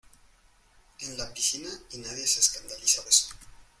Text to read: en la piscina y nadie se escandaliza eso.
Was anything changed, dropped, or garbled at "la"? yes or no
no